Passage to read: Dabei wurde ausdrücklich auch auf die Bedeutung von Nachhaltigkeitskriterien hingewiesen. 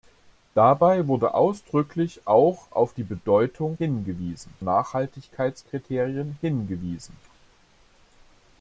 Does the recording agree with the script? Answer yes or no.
no